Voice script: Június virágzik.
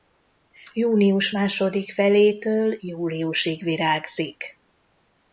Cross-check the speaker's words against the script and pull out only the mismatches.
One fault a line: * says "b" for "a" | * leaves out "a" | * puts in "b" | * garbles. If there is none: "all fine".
* puts in "második felétől júliusig"